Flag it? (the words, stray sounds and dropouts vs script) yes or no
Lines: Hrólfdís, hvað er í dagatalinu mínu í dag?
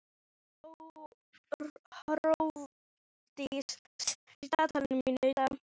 yes